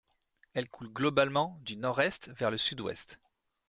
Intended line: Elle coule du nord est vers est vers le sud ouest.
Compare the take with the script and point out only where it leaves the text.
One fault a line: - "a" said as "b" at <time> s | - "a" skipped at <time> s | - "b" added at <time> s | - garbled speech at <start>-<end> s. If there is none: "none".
- "globalement" added at 0.9 s
- "est vers" skipped at 2.5 s